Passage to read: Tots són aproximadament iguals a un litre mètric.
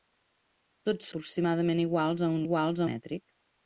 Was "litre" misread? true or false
true